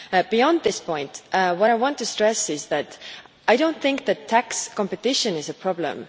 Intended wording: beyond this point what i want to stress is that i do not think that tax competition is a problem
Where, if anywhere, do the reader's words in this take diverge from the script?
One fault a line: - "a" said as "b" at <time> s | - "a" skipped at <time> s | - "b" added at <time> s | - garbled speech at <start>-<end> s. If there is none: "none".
none